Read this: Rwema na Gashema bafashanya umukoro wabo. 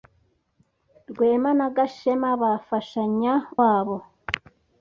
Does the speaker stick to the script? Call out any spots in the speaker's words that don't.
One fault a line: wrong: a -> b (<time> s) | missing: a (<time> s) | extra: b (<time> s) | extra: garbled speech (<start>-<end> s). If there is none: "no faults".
missing: umukoro (3.3 s)